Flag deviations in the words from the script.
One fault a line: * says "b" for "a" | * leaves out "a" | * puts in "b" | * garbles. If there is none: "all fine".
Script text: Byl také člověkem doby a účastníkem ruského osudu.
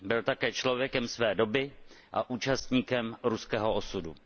* puts in "své"